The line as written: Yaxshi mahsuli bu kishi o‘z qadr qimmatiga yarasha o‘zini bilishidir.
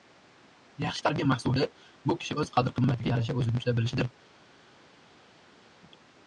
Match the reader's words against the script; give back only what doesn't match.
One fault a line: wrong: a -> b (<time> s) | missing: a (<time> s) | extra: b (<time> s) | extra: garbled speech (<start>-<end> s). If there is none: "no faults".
extra: tarbiya (1.1 s)
extra: tuta (3.6 s)